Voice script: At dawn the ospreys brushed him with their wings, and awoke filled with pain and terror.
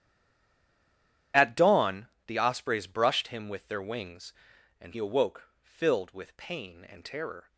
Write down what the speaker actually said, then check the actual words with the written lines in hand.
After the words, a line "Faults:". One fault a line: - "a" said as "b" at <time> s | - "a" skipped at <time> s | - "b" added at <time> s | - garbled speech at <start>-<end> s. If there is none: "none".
At dawn the ospreys brushed him with their wings, and awoke filled with pain and terror.
Faults:
none